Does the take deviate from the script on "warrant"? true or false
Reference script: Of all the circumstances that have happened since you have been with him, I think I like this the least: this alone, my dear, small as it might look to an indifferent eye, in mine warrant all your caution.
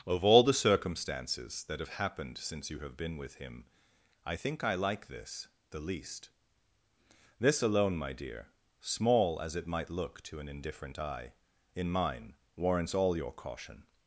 true